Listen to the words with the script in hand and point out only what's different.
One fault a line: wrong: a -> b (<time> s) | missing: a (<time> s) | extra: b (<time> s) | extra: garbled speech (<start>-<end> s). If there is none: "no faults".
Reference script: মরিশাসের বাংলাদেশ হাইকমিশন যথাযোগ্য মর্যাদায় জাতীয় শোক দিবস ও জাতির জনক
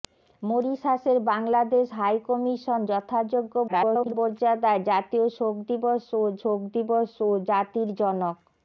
extra: garbled speech (3.7-4.1 s)
extra: শোক দিবস ও (6.4 s)